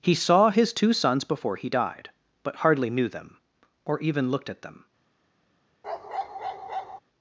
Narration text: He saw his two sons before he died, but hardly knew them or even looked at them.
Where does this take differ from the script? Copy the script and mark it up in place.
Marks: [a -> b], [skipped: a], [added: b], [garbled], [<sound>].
He saw his two sons before he died, but hardly knew them or even looked at them. [bark]